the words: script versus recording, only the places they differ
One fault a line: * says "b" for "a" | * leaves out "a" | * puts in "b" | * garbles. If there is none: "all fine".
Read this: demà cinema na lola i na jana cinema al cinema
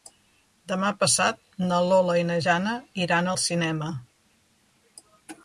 * says "passat" for "cinema"
* says "iran" for "cinema"